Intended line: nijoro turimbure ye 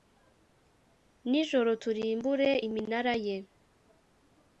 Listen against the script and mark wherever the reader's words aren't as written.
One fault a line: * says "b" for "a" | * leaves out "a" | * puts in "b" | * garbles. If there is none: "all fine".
* puts in "iminara"